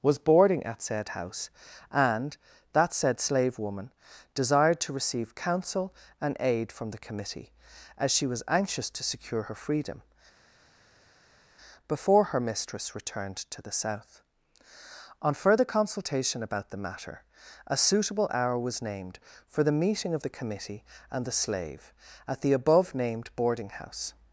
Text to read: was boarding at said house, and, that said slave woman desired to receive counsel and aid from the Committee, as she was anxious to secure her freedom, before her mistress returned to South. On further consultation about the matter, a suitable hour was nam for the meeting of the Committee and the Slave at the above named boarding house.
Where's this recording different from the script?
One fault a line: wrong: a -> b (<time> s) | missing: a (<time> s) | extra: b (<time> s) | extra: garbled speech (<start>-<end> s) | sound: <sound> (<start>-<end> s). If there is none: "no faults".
extra: the (13.6 s)
wrong: nam -> named (18.8 s)